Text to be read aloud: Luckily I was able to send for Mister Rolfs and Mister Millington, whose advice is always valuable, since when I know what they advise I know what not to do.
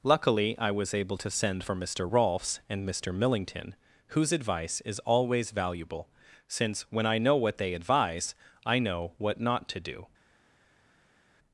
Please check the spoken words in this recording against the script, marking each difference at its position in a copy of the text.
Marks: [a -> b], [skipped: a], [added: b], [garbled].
Luckily I was able to send for Mister Rolfs and Mister Millington, whose advice is always valuable, since when I know what they advise I know what not to do.